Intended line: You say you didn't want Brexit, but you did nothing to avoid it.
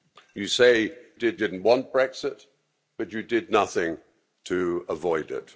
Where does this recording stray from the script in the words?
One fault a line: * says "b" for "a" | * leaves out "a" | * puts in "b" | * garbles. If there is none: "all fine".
* says "did" for "you"